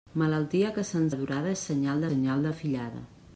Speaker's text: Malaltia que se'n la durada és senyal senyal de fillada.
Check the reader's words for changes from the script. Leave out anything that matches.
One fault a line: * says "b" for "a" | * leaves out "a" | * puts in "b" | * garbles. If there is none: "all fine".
all fine